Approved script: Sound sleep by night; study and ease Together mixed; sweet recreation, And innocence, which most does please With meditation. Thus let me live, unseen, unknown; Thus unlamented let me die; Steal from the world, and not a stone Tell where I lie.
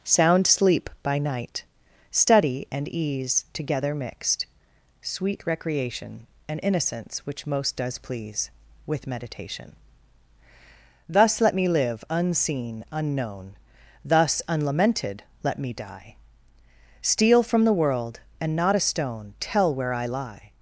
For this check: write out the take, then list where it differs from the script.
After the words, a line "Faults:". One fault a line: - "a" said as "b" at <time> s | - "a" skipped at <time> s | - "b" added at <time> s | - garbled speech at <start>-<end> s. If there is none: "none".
Sound sleep by night; study and ease Together mixed; sweet recreation, And innocence, which most does please With meditation. Thus let me live, unseen, unknown; Thus unlamented let me die; Steal from the world, and not a stone Tell where I lie.
Faults:
none